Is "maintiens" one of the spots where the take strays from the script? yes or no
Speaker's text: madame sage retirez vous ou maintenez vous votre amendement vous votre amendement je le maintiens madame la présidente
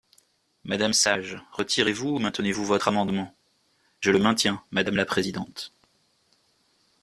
no